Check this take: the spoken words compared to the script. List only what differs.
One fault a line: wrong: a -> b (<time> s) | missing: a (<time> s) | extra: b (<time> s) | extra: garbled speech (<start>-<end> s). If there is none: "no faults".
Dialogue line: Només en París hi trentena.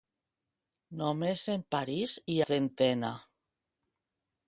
no faults